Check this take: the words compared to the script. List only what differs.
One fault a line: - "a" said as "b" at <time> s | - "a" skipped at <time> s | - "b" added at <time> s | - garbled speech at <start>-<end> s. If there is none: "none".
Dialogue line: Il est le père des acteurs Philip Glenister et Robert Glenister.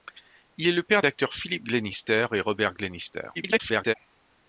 - "des" skipped at 1.0 s
- garbled speech at 3.3-3.9 s